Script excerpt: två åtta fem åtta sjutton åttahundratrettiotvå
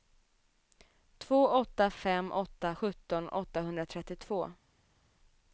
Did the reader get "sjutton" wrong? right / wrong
right